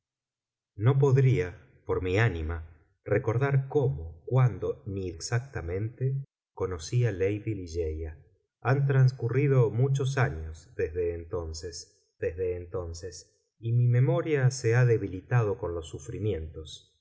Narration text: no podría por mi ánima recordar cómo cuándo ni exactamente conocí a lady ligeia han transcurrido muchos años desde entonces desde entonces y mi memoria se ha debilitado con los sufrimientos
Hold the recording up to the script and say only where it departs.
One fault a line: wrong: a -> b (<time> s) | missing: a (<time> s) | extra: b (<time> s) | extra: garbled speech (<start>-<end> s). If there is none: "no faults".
no faults